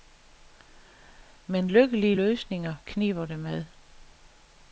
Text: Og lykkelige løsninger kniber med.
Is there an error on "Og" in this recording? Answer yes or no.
yes